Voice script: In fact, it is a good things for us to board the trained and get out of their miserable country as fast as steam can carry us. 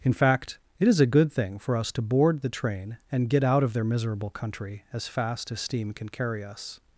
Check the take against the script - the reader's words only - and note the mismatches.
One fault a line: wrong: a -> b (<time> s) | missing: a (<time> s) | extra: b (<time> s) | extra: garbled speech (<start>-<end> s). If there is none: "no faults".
wrong: things -> thing (1.3 s)
wrong: trained -> train (2.5 s)